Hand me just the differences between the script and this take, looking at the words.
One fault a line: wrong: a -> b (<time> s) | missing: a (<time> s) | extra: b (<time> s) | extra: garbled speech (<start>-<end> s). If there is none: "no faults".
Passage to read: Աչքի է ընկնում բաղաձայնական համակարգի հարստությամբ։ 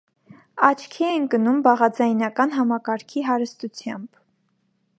no faults